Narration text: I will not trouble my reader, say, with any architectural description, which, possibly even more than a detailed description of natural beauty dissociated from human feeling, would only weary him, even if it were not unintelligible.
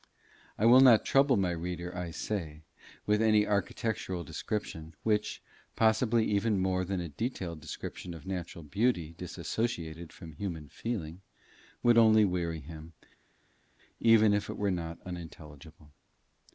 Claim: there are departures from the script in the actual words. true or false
true